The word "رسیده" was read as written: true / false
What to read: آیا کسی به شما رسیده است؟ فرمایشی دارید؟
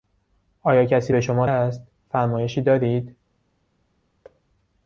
false